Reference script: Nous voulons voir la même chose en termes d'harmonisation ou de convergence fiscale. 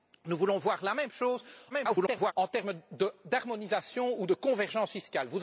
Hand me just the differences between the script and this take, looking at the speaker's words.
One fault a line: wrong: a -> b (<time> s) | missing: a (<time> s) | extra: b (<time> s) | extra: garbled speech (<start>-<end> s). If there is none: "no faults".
extra: garbled speech (1.7-2.3 s)